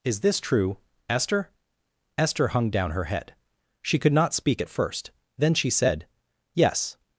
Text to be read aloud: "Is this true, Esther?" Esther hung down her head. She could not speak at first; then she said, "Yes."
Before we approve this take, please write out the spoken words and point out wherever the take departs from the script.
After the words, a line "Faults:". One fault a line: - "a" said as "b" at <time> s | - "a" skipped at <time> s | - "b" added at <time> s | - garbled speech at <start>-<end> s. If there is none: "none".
"Is this true, Esther?" Esther hung down her head. She could not speak at first; then she said, "Yes."
Faults:
none